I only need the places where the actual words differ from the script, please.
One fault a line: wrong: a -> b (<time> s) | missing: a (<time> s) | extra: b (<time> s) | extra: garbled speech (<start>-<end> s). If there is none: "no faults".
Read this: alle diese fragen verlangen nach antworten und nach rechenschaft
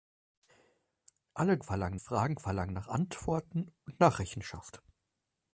wrong: diese -> verlangen (1.6 s)